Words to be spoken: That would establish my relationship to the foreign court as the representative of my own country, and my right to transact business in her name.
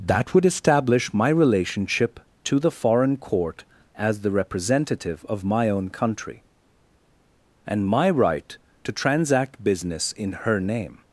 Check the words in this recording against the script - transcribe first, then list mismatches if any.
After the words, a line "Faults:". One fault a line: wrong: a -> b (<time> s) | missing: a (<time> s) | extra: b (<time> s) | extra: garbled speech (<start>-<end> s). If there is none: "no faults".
That would establish my relationship to the foreign court as the representative of my own country, and my right to transact business in her name.
Faults:
no faults